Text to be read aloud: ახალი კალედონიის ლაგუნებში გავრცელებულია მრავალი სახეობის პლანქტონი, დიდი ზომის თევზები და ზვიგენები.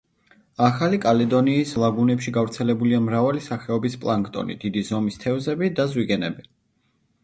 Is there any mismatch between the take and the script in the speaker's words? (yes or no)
no